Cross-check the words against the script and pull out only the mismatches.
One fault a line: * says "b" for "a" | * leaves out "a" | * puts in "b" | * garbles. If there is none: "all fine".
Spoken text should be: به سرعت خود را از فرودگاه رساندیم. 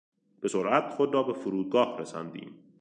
* says "به" for "از"